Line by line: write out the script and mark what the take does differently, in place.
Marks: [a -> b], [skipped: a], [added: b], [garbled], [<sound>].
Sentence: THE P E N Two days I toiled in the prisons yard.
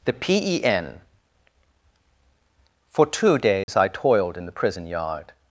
THE P E N [added: For] Two days [dropout] I toiled in the [prisons -> prison] yard.